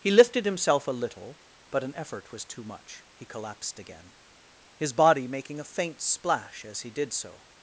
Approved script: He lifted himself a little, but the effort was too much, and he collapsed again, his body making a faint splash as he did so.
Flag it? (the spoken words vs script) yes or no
yes